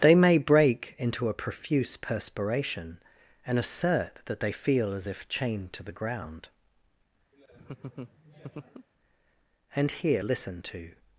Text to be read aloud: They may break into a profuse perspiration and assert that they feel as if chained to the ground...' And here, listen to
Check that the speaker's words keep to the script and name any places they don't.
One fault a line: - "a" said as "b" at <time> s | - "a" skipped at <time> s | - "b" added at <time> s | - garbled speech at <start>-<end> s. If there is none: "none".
none